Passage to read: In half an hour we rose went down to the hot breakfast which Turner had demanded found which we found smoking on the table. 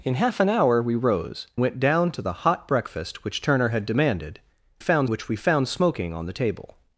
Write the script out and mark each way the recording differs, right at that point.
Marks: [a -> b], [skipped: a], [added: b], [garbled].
In half an hour we rose went down to the hot breakfast which Turner had demanded found which we found smoking on the table.